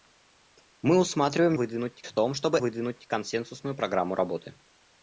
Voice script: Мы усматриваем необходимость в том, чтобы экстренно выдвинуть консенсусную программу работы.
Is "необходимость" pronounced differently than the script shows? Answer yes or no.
yes